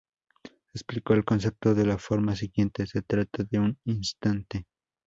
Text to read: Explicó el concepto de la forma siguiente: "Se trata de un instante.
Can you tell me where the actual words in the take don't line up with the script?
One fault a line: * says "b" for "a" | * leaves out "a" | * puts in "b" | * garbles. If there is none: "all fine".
all fine